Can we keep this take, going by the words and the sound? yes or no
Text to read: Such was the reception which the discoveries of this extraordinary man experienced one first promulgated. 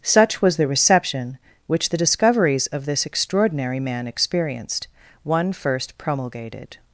yes